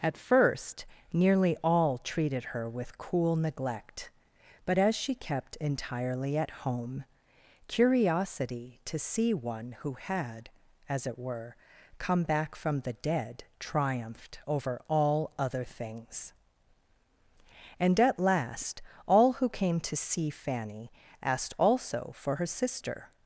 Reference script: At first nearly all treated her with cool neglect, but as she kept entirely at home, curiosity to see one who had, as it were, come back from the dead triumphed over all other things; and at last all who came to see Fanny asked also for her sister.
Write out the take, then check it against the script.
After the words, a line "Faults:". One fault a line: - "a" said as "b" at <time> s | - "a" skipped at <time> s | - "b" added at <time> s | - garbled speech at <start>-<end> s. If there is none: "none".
At first nearly all treated her with cool neglect, but as she kept entirely at home, curiosity to see one who had, as it were, come back from the dead triumphed over all other things; and at last all who came to see Fanny asked also for her sister.
Faults:
none